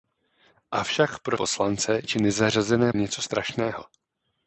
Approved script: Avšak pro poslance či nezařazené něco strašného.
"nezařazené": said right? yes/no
yes